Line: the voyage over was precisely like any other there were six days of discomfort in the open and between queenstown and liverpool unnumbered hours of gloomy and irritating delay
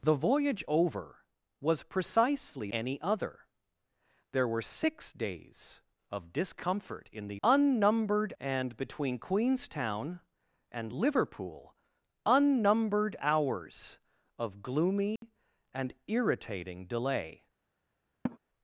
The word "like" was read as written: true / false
false